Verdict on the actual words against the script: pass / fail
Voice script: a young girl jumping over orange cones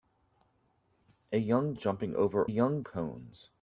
fail